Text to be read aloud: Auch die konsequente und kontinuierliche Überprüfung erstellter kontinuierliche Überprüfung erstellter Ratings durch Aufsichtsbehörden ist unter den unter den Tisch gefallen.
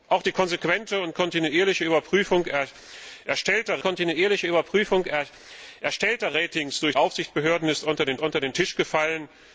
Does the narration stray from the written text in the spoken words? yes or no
no